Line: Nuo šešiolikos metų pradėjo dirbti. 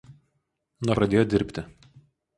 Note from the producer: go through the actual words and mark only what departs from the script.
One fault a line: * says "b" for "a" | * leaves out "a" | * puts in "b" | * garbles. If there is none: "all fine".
* leaves out "šešiolikos metų"